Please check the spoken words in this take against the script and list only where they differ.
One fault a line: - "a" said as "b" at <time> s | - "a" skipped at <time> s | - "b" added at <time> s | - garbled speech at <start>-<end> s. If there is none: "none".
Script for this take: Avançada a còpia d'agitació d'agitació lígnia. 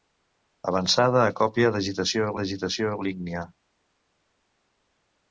none